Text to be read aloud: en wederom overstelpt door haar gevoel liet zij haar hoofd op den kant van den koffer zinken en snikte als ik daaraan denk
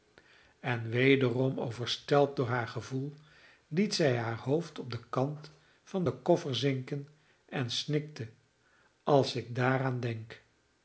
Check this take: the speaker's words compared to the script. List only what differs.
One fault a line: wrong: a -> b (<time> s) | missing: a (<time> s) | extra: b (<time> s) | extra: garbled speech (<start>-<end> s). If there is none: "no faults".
no faults